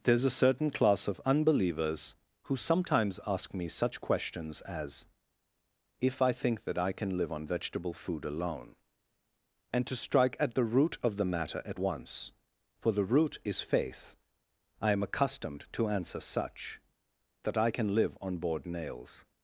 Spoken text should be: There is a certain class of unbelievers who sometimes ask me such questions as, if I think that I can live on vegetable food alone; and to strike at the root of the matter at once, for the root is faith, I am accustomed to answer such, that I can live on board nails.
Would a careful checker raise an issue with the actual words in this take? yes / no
no